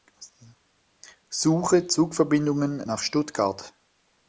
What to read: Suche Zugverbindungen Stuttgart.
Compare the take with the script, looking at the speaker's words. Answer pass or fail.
fail